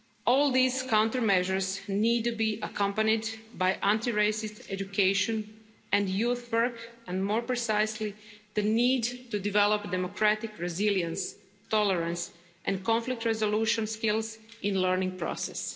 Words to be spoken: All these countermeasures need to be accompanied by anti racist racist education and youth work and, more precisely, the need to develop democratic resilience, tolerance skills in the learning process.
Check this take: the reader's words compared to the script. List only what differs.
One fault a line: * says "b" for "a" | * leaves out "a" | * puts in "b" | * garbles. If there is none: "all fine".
* leaves out "racist"
* puts in "and conflict resolution"